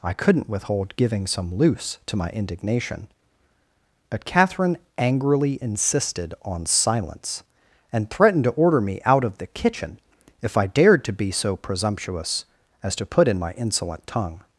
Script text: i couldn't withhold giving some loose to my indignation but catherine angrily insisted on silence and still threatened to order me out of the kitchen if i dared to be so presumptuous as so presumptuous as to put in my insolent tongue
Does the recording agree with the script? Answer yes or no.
no